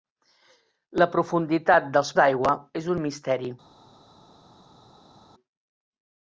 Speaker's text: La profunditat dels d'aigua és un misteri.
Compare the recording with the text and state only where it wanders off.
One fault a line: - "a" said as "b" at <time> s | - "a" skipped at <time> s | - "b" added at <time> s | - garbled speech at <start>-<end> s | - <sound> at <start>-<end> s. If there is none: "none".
none